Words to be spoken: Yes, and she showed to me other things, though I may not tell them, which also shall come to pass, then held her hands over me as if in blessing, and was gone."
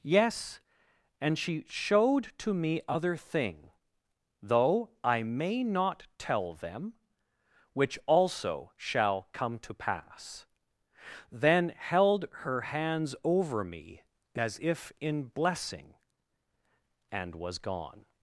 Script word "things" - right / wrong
wrong